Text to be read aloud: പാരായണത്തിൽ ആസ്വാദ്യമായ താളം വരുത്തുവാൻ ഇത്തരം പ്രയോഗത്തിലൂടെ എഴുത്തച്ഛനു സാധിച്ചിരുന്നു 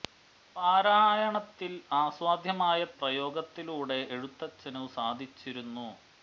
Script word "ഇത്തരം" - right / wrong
wrong